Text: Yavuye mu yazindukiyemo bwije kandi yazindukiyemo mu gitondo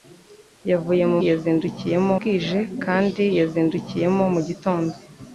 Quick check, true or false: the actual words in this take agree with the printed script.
true